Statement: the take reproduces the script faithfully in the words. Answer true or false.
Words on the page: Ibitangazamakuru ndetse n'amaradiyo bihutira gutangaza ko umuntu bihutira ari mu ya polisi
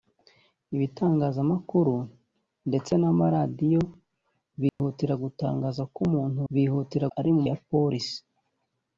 true